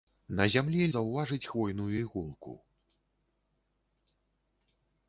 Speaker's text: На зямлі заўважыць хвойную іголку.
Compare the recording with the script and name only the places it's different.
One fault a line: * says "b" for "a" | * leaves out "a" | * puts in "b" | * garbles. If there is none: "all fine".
all fine